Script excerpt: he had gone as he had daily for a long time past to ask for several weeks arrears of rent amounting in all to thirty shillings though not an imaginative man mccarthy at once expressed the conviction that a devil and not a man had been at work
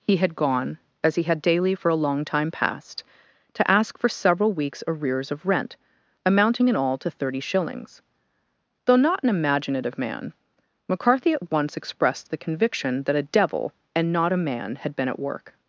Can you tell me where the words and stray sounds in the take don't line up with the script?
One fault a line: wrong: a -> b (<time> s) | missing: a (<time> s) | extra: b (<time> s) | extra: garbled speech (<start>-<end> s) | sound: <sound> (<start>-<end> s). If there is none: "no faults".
no faults